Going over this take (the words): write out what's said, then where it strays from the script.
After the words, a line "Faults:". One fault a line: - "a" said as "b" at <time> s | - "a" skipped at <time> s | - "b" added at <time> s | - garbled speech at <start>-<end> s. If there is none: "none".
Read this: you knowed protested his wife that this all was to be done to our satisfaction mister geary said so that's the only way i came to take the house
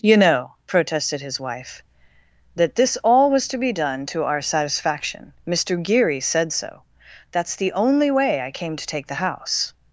you know protested his wife that this all was to be done to our satisfaction mister geary said so that's the only way i came to take the house
Faults:
- "knowed" said as "know" at 0.2 s